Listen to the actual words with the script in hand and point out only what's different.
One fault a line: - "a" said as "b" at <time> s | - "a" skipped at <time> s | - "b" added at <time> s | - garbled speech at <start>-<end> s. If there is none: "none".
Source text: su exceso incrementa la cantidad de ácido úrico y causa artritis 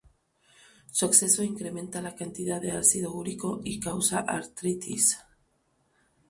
none